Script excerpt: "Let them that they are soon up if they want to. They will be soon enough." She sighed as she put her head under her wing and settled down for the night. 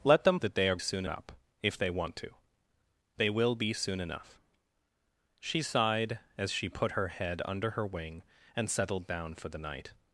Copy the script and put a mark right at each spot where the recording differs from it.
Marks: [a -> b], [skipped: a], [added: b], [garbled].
"Let them that they are soon up if they want to. They will be soon enough." She sighed as she put her head under her wing and settled down for the night.